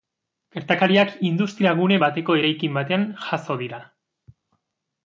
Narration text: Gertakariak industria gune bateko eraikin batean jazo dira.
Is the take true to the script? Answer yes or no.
yes